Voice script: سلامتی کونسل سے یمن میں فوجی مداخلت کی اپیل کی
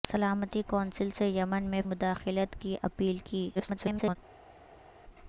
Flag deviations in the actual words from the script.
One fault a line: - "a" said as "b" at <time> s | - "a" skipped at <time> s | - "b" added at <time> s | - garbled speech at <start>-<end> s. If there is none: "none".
- "فوجی" skipped at 1.8 s
- garbled speech at 3.5-4.2 s